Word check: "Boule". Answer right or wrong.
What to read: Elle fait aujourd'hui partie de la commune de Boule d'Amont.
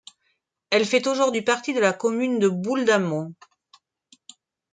right